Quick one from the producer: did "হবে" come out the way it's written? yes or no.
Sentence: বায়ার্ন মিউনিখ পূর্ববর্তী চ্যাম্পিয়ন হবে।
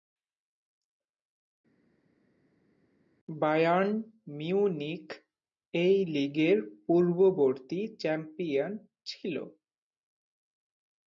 no